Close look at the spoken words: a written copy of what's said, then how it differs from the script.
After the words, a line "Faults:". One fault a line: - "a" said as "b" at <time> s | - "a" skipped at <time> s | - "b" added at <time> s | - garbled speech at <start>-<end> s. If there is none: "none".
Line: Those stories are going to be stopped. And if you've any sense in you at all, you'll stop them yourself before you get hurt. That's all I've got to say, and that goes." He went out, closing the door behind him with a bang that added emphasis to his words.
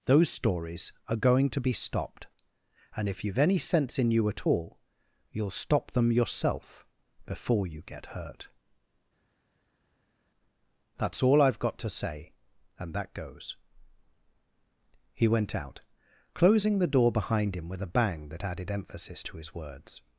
Those stories are going to be stopped. And if you've any sense in you at all, you'll stop them yourself before you get hurt. That's all I've got to say, and that goes." He went out, closing the door behind him with a bang that added emphasis to his words.
Faults:
none